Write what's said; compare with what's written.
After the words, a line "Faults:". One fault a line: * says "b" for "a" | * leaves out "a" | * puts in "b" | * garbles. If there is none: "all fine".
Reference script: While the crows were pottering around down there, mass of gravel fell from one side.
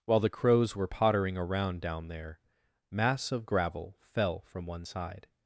While the crows were pottering around down there, mass of gravel fell from one side.
Faults:
all fine